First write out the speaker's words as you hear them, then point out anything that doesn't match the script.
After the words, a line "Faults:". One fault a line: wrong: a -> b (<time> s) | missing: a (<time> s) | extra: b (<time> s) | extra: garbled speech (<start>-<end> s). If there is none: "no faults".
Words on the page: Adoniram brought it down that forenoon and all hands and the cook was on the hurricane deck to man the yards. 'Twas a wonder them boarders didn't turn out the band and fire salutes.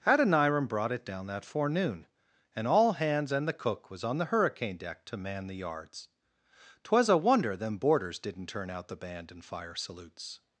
Adoniram brought it down that forenoon and all hands and the cook was on the hurricane deck to man the yards. 'Twas a wonder them boarders didn't turn out the band and fire salutes.
Faults:
no faults